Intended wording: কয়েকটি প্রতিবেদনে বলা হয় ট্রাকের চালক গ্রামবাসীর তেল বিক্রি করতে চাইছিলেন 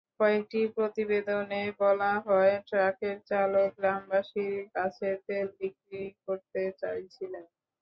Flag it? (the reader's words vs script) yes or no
yes